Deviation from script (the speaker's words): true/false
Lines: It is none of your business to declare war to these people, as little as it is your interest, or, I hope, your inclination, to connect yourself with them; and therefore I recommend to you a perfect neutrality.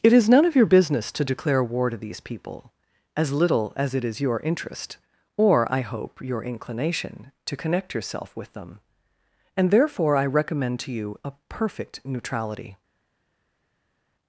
false